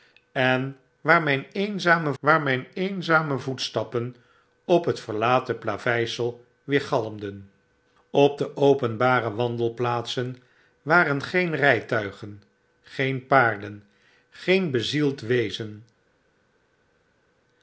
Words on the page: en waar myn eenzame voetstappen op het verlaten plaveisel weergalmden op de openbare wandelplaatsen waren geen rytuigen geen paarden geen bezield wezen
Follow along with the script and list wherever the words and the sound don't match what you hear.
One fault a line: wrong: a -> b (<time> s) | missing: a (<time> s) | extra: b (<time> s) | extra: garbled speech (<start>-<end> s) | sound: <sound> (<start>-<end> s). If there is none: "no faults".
extra: waar myn eenzame (2.2 s)